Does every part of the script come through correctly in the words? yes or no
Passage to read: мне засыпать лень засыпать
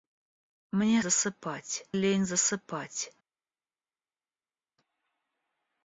yes